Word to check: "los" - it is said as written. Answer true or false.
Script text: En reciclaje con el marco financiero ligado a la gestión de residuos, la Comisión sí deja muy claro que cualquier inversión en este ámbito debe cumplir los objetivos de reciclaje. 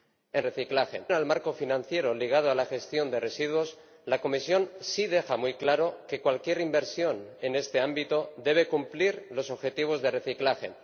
true